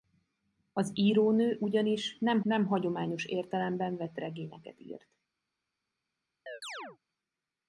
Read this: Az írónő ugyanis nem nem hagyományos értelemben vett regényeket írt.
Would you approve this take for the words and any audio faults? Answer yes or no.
no